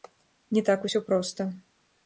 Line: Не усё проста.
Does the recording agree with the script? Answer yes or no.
no